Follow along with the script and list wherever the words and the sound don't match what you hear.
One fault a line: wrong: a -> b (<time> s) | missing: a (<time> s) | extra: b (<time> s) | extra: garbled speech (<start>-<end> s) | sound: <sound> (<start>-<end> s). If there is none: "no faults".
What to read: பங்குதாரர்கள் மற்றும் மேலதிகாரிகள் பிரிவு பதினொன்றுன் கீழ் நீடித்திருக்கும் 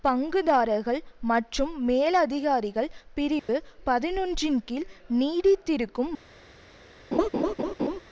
sound: dropout (3.4-3.5 s)
sound: laugh (7.1-8.0 s)